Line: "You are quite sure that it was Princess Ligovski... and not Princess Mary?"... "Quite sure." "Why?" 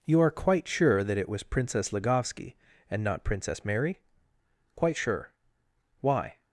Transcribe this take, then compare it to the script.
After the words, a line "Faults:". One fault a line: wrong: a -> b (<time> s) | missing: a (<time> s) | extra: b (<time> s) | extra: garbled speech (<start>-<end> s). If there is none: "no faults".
"You are quite sure that it was Princess Ligovski... and not Princess Mary?"... "Quite sure." "Why?"
Faults:
no faults